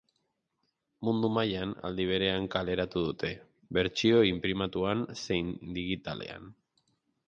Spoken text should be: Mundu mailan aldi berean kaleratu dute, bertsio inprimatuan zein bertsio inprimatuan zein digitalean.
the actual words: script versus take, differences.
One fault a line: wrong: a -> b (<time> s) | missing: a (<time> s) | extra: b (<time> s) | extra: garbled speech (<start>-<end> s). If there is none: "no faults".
missing: bertsio inprimatuan zein (5.6 s)